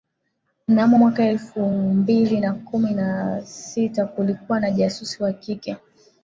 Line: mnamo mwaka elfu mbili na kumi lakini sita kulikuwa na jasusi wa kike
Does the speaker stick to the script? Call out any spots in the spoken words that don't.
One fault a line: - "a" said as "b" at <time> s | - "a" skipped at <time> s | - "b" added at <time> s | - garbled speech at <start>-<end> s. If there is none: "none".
- "lakini" said as "na" at 2.9 s